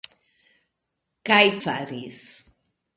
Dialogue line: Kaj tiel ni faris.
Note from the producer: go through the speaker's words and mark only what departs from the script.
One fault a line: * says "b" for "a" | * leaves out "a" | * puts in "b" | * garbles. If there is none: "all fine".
* leaves out "tiel ni"